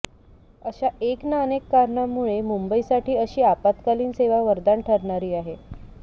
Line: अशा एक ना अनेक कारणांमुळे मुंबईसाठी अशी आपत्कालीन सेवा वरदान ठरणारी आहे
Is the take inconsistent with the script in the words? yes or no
no